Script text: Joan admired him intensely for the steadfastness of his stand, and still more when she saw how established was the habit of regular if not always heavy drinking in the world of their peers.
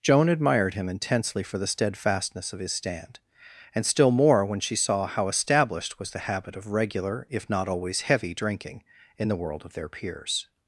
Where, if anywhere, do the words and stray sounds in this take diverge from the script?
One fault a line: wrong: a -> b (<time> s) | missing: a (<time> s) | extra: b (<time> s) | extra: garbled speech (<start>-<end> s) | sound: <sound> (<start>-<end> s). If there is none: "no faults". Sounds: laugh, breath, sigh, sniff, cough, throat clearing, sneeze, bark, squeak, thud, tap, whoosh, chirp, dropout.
no faults